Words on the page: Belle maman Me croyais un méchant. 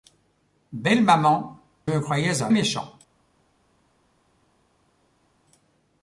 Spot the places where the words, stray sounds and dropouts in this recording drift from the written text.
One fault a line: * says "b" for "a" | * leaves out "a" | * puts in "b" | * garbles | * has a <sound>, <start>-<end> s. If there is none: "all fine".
all fine